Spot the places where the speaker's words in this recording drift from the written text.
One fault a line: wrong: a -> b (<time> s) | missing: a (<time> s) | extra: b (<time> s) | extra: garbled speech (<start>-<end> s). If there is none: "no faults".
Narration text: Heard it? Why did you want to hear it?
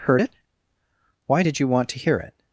no faults